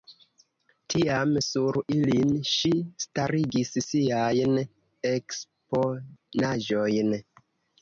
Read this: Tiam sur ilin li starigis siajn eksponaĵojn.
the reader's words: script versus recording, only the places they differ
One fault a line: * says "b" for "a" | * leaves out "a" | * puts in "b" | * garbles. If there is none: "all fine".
* says "ŝi" for "li"